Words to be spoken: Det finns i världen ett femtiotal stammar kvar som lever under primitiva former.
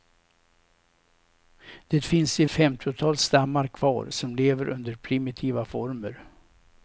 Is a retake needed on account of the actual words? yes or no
yes